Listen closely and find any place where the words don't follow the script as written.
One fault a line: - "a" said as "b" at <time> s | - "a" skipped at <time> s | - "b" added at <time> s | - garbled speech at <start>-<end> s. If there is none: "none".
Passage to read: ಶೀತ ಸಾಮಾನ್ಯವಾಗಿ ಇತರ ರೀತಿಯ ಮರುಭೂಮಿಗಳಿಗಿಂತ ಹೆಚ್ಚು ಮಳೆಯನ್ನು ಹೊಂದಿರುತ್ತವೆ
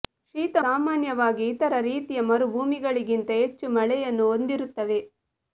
none